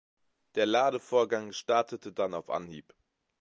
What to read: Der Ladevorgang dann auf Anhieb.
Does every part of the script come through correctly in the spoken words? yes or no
no